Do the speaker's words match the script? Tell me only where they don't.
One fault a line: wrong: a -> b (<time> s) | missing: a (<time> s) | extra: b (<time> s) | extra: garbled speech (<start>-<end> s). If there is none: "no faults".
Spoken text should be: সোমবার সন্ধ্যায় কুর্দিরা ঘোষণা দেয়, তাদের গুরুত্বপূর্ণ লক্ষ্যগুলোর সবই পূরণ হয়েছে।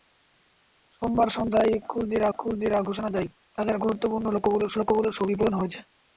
extra: কুর্দিরা (2.4 s)
extra: লক্ষ্যগুলোর (4.8 s)